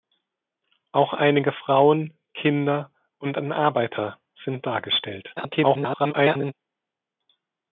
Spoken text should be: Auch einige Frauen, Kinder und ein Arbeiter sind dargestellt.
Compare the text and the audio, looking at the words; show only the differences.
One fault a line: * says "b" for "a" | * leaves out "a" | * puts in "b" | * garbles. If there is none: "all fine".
* garbles